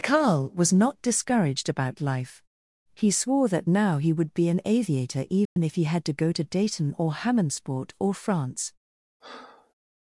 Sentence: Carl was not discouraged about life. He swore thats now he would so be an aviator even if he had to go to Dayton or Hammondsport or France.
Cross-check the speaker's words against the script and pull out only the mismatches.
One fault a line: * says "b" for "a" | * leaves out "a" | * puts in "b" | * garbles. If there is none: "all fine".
* says "that" for "thats"
* leaves out "so"